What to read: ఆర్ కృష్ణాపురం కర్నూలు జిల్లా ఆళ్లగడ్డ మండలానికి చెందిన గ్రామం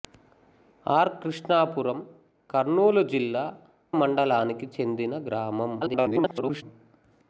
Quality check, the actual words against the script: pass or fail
fail